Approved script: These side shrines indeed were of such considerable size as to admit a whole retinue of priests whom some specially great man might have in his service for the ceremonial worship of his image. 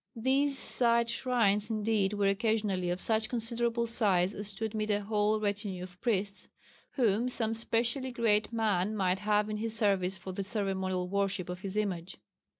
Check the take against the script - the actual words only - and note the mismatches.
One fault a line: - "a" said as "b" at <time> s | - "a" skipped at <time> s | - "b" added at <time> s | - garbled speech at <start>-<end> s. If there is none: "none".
- "occasionally" added at 2.3 s